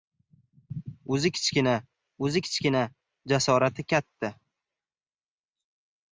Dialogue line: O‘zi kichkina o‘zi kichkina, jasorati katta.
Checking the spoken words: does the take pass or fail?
pass